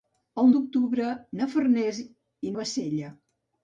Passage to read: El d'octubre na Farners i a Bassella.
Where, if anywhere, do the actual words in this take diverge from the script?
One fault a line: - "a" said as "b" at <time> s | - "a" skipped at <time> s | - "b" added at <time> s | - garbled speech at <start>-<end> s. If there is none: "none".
none